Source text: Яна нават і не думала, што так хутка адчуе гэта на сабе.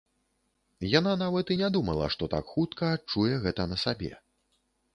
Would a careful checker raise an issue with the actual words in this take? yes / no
no